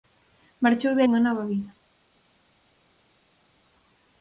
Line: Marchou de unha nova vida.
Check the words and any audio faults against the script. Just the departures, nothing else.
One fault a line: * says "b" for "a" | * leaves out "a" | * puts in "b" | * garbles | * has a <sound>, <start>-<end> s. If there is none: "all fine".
all fine